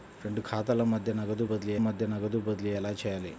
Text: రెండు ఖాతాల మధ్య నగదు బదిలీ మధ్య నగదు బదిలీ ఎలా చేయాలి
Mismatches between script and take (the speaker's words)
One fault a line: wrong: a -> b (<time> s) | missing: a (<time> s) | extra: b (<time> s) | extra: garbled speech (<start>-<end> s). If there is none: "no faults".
no faults